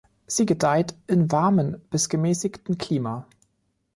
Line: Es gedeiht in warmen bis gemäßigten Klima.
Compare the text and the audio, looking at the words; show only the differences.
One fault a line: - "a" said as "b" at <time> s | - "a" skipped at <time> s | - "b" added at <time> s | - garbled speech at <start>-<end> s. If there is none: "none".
- "Es" said as "Sie" at 0.2 s